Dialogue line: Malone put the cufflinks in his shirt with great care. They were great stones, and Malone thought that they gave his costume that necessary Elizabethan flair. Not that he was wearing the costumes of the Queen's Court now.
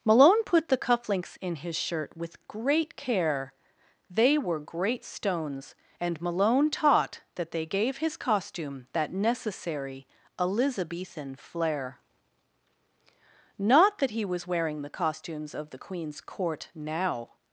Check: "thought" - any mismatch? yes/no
yes